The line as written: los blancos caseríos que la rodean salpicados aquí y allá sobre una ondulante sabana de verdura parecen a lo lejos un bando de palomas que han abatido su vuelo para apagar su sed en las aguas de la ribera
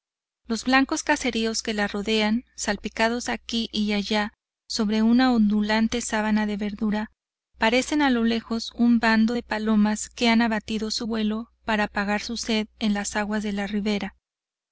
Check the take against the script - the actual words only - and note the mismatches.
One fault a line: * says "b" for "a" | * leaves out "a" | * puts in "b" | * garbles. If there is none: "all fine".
all fine